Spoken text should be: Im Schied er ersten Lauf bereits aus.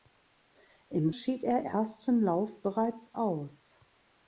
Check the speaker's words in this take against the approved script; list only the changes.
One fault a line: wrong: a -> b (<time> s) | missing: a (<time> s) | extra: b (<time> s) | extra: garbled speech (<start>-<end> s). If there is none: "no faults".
no faults